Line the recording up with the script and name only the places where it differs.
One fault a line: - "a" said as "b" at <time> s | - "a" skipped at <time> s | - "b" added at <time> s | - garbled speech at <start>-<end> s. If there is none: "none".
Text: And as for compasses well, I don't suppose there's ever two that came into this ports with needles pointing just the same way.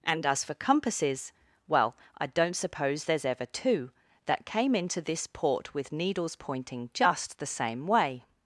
- "ports" said as "port" at 5.2 s